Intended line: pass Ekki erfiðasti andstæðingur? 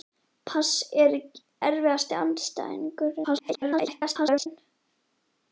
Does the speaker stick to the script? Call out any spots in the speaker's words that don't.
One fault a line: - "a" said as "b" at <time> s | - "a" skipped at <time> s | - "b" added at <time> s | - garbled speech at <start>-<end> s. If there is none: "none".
- "Ekki" skipped at 0.7 s
- garbled speech at 3.2-4.5 s